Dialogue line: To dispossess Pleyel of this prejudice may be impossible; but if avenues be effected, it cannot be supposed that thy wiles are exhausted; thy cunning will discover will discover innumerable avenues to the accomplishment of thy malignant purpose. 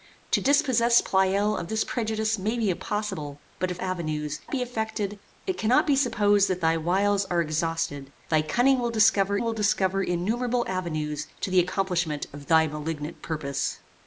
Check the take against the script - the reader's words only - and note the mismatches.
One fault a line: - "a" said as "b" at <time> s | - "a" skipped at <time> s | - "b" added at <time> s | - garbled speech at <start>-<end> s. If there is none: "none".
none